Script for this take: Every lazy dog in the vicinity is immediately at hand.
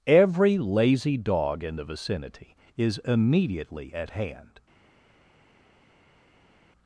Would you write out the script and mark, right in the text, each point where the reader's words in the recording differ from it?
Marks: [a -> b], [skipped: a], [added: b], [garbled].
Every lazy dog in the vicinity is immediately at hand.